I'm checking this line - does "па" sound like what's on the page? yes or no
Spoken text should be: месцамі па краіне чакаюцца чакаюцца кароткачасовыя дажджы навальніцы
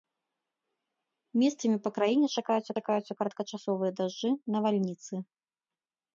yes